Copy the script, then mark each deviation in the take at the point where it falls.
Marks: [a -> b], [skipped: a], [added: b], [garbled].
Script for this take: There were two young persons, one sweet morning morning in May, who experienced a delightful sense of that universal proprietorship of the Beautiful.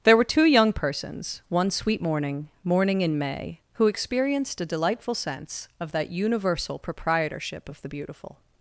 There were two young persons, one sweet morning morning in May, who experienced a delightful sense of that universal proprietorship of the Beautiful.